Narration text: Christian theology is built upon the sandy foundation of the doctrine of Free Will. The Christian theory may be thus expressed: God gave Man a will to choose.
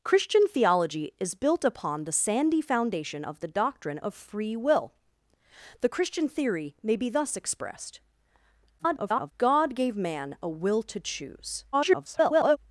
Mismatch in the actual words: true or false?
true